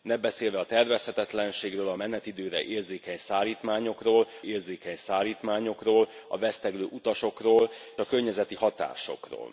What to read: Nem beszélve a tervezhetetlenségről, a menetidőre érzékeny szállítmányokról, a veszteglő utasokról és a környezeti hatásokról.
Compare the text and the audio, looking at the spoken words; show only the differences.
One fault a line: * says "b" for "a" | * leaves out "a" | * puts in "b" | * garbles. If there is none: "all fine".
* puts in "érzékeny szállítmányokról"
* leaves out "és"